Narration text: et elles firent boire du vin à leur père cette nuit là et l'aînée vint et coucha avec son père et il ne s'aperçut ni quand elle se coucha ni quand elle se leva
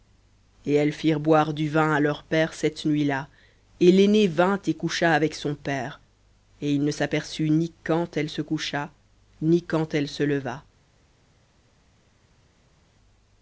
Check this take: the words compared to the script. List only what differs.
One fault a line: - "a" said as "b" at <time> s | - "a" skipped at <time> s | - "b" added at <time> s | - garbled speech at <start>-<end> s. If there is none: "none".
none